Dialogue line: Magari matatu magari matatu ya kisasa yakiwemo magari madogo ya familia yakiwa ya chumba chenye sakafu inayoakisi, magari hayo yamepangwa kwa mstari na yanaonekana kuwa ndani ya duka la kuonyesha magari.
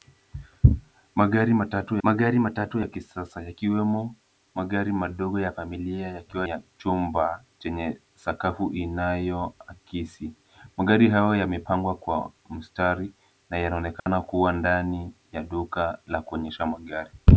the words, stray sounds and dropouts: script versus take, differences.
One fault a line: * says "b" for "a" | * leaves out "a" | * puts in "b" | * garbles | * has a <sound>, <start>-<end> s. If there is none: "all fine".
* has a dropout, 14.0-14.1 s